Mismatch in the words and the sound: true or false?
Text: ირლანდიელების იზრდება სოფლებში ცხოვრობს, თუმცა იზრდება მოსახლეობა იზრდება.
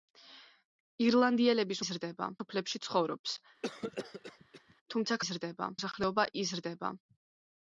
true